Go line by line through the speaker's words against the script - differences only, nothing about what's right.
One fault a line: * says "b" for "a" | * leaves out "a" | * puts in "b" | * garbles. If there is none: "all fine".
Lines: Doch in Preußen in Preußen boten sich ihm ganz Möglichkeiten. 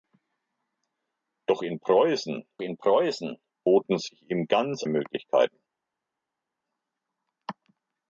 all fine